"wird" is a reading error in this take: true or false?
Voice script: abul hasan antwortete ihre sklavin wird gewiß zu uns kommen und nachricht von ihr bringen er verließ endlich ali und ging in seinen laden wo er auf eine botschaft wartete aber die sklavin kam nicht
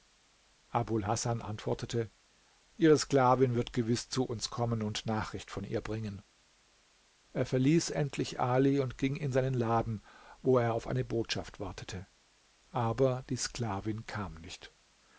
false